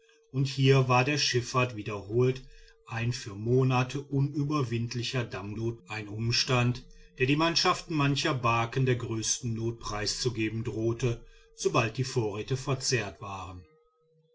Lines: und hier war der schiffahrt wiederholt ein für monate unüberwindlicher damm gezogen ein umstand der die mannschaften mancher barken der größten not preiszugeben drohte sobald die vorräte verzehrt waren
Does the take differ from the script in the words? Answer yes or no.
yes